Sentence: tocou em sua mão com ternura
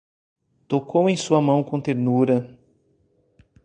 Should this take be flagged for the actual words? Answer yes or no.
no